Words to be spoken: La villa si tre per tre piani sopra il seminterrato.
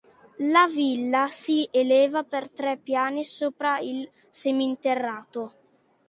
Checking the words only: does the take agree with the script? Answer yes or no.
no